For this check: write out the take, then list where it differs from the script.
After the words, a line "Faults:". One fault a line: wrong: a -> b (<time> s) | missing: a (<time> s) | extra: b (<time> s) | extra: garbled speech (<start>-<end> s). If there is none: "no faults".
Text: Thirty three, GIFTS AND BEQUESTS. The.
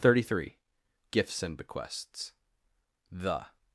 Thirty three, GIFTS AND BEQUESTS. The.
Faults:
no faults